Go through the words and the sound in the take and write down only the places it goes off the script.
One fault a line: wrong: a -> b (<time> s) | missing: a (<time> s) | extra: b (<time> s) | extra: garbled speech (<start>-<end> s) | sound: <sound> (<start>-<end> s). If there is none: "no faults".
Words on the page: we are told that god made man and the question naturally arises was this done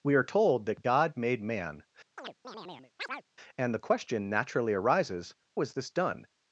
sound: chirp (2.2-3.2 s)